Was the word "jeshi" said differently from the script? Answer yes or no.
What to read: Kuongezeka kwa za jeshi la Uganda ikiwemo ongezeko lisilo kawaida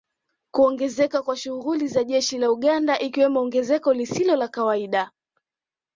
no